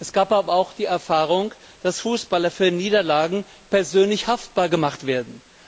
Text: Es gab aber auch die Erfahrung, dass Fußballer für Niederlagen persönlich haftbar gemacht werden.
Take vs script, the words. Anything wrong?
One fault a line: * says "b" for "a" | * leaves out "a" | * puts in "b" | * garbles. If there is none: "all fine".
all fine